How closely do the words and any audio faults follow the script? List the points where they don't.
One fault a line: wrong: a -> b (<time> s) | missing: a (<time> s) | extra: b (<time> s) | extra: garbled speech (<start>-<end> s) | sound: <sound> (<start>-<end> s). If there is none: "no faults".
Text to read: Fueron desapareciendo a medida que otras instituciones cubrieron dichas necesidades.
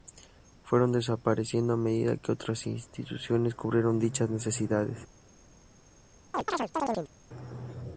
sound: chirp (6.3-7.1 s)